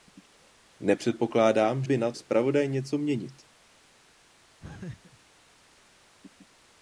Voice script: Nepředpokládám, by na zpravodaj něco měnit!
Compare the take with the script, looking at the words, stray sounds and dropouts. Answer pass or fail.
fail